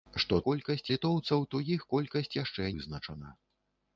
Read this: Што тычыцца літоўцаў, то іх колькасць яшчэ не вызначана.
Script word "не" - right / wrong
wrong